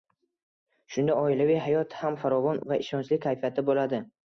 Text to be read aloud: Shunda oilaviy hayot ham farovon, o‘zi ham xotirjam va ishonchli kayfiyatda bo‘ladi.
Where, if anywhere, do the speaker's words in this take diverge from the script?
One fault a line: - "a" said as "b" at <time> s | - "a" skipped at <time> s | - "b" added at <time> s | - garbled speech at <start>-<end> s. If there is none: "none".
- "o‘zi ham xotirjam" skipped at 2.6 s